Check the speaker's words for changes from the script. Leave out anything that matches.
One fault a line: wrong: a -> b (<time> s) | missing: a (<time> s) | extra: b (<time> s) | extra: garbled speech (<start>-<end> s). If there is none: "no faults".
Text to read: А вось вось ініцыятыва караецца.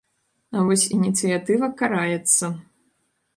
missing: вось (0.8 s)